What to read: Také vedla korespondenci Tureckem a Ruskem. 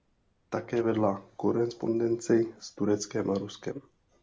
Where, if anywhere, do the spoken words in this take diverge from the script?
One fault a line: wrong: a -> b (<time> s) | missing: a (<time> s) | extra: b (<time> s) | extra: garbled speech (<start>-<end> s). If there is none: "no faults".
extra: s (2.6 s)